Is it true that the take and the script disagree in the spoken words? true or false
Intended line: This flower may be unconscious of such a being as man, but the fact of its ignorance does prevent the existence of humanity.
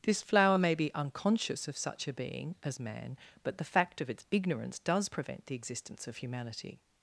false